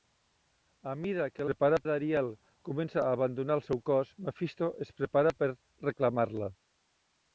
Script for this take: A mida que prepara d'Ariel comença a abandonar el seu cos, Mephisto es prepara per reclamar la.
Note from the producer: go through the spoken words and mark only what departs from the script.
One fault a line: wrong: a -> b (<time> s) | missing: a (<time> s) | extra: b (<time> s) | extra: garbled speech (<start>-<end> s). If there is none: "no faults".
no faults